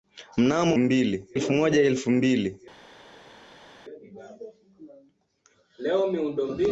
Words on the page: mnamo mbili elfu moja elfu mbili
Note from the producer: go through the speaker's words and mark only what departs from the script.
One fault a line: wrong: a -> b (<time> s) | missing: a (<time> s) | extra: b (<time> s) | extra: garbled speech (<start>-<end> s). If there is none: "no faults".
no faults